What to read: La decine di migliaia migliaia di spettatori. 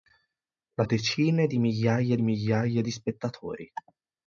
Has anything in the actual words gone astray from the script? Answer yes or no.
no